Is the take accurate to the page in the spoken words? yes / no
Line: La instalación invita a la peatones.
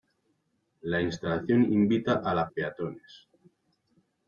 yes